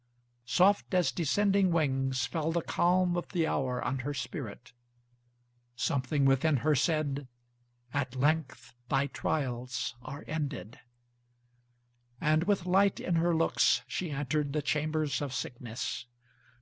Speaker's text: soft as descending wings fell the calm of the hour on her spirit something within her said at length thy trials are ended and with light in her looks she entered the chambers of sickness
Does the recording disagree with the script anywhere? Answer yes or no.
no